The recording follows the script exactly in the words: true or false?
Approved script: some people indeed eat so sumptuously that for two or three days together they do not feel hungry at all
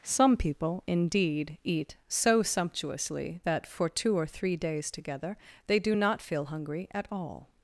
true